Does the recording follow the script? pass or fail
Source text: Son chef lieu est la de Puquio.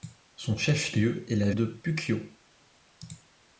pass